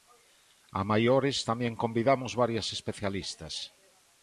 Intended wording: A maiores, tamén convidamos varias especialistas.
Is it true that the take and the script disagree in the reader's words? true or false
false